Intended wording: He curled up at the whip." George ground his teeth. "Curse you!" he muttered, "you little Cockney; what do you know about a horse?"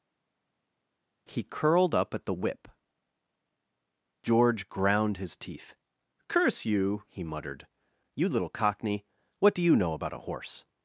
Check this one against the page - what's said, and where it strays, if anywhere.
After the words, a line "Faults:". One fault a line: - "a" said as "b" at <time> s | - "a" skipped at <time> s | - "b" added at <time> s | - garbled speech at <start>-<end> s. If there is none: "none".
He curled up at the whip." George ground his teeth. "Curse you!" he muttered, "you little Cockney; what do you know about a horse?"
Faults:
none